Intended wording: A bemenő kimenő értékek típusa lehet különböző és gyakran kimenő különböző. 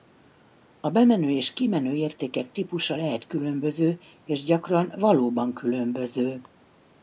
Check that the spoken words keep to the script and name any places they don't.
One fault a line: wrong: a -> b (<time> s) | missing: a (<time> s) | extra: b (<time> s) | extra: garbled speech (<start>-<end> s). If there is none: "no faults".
extra: és (1.3 s)
wrong: kimenő -> valóban (5.0 s)